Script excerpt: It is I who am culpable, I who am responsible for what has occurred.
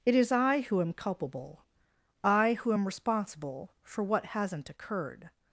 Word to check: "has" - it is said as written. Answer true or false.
false